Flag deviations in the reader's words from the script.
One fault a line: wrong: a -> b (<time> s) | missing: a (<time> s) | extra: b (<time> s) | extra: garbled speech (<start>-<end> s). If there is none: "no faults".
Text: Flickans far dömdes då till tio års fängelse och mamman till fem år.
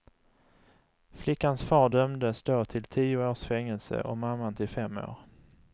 no faults